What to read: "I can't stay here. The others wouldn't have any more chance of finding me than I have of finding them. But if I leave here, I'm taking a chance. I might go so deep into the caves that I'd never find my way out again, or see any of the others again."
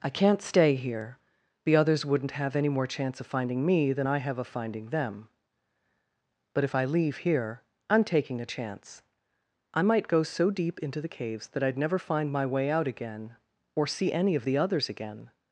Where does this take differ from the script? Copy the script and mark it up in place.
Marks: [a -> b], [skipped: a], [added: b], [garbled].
"I can't stay here. The others wouldn't have any more chance of finding me than I have of finding them. But if I leave here, I'm taking a chance. I might go so deep into the caves that I'd never find my way out again, or see any of the others again."